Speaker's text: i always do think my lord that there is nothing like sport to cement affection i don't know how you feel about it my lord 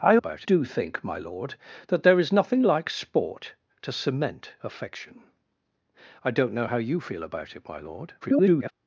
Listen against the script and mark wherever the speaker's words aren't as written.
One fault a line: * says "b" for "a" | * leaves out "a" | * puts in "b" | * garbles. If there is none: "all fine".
* says "about" for "always"
* garbles